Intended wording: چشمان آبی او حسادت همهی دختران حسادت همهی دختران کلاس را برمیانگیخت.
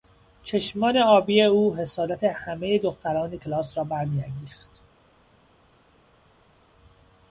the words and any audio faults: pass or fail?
fail